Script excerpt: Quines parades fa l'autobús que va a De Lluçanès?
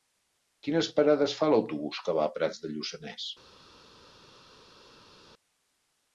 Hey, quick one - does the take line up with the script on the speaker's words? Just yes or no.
no